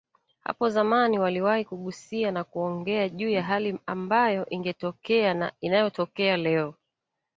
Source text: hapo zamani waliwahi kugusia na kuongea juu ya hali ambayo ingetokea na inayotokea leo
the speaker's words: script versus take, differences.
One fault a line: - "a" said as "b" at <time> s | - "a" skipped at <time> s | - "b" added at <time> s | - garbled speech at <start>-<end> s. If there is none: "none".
none